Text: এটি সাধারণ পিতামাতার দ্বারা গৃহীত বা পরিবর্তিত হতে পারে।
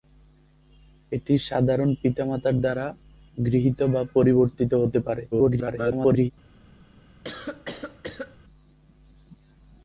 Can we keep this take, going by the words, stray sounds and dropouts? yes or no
no